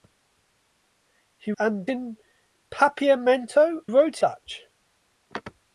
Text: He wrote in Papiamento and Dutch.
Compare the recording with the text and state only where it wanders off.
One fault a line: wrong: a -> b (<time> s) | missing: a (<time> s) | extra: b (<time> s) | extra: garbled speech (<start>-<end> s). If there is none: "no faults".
wrong: wrote -> and (1.6 s)
wrong: and -> wrote (3.8 s)